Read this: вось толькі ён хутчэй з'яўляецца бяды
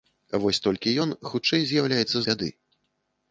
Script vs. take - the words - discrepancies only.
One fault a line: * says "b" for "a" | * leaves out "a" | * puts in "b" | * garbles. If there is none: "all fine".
all fine